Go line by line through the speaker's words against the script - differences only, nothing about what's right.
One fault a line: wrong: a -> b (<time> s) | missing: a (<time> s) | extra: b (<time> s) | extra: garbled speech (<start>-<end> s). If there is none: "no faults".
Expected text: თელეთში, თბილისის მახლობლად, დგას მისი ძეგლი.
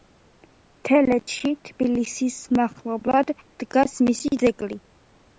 no faults